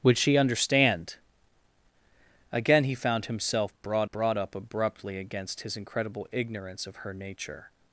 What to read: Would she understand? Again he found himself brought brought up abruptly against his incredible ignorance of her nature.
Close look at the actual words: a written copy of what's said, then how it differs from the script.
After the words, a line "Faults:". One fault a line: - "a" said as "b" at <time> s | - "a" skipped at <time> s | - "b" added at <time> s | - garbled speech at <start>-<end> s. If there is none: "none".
Would she understand? Again he found himself brought brought up abruptly against his incredible ignorance of her nature.
Faults:
none